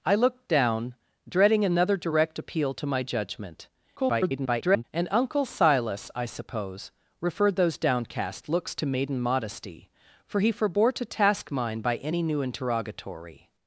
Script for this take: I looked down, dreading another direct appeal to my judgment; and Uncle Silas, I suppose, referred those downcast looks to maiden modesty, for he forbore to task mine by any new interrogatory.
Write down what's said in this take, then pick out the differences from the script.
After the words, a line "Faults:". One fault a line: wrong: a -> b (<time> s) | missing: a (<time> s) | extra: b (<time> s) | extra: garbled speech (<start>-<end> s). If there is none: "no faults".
I looked down, dreading another direct appeal to my judgment; [garbled] and Uncle Silas, I suppose, referred those downcast looks to maiden modesty, for he forbore to task mine by any new interrogatory.
Faults:
extra: garbled speech (4.0-4.8 s)